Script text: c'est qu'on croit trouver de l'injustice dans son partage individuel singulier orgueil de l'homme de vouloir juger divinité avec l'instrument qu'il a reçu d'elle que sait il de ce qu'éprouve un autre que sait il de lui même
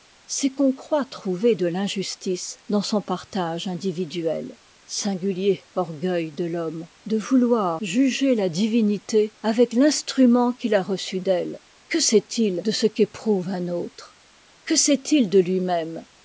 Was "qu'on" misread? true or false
false